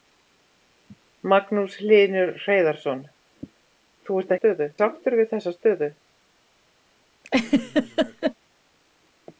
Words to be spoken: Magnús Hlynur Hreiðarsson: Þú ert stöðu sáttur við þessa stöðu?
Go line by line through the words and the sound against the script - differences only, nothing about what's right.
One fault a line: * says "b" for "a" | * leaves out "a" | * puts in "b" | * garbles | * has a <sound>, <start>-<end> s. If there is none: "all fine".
* has a laugh, 7.2-8.3 s